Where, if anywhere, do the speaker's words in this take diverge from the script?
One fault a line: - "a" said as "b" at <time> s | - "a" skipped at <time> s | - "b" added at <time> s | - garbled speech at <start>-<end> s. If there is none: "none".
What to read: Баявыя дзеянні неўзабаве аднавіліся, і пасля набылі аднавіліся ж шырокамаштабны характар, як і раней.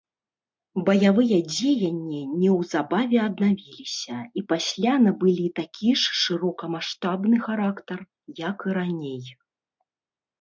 - "аднавіліся" said as "такі" at 5.6 s